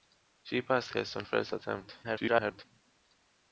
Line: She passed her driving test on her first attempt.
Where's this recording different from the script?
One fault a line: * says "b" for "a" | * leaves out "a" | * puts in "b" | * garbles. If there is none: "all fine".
* leaves out "her driving"
* leaves out "her"
* garbles